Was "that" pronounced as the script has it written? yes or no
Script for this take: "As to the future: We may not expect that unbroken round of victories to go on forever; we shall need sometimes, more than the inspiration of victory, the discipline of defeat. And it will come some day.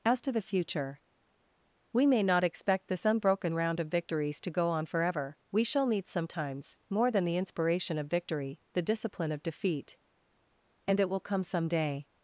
no